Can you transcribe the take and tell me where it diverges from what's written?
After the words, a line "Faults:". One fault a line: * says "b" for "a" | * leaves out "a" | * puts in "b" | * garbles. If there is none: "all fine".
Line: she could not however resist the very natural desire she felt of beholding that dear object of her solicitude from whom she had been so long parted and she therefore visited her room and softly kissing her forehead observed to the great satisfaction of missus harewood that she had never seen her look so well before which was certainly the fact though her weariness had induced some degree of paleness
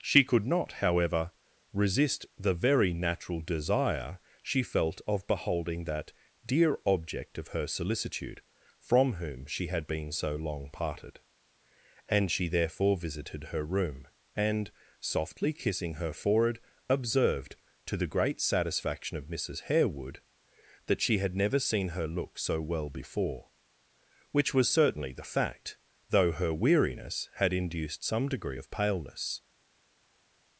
she could not however resist the very natural desire she felt of beholding that dear object of her solicitude from whom she had been so long parted and she therefore visited her room and softly kissing her forehead observed to the great satisfaction of missus harewood that she had never seen her look so well before which was certainly the fact though her weariness had induced some degree of paleness
Faults:
all fine